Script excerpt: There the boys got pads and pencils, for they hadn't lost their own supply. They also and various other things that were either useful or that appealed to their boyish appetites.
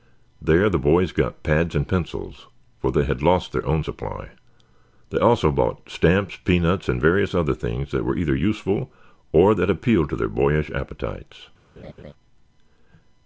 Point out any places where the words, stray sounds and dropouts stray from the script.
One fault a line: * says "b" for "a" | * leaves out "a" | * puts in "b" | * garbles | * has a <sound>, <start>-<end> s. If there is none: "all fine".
* says "had" for "hadn't"
* puts in "bought stamps peanuts"
* has a laugh, 11.8-12.1 s